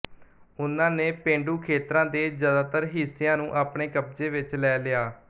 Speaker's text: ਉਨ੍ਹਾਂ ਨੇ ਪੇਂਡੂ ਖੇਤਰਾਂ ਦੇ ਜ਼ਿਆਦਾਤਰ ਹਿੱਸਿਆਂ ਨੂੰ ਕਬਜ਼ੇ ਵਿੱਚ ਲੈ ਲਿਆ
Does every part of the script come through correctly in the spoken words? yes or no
no